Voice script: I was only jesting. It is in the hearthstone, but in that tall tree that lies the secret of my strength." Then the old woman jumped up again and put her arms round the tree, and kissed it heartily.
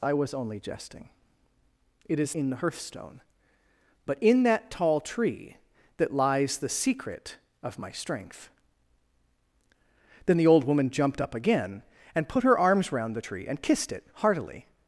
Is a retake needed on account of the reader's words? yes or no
no